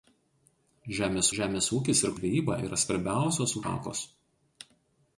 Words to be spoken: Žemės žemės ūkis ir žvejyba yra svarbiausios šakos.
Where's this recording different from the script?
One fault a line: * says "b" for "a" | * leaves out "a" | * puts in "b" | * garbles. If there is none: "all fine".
all fine